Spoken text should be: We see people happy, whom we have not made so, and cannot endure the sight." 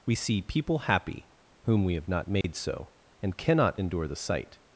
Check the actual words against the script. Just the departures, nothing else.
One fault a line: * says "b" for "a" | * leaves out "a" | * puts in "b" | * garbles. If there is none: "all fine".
all fine